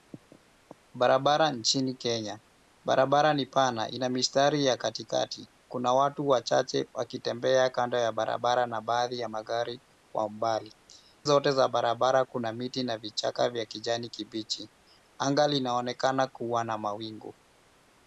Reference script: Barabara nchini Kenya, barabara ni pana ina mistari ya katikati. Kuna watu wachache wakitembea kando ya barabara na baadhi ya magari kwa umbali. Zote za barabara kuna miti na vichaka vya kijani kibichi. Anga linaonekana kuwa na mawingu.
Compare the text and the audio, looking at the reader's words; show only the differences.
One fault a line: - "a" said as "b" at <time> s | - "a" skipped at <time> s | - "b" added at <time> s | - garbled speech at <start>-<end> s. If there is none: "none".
none